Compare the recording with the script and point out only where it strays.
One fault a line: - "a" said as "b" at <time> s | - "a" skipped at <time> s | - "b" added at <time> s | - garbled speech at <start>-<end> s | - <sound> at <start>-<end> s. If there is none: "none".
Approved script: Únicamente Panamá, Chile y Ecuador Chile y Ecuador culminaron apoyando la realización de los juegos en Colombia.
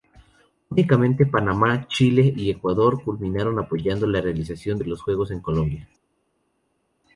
- "Chile y Ecuador" skipped at 3.0 s